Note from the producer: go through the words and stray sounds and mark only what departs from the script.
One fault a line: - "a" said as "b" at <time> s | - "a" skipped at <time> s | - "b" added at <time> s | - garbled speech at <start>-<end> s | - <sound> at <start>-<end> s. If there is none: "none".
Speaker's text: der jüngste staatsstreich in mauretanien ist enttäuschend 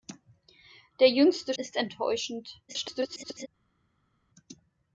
- "staatsstreich in mauretanien" skipped at 1.5 s
- garbled speech at 2.7-3.5 s